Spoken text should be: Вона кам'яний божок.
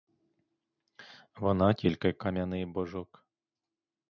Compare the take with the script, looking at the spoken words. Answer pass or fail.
fail